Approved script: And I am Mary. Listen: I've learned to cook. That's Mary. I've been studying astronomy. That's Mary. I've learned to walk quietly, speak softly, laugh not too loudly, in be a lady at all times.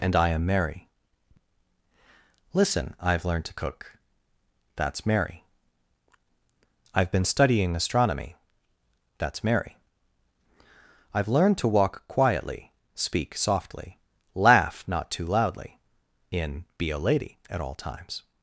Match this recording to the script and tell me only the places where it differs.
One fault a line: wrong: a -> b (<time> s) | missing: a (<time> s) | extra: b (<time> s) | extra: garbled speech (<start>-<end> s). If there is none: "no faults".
no faults